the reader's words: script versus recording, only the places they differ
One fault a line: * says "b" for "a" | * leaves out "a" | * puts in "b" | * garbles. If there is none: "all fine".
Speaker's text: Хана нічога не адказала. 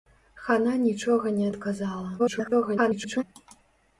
* garbles